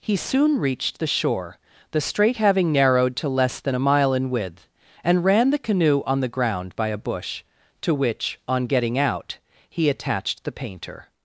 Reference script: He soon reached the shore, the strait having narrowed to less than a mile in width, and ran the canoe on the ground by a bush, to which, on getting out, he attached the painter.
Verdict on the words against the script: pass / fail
pass